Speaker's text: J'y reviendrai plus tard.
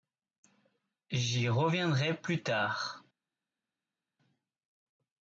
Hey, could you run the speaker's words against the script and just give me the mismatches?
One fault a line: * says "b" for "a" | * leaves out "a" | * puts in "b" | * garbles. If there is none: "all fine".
all fine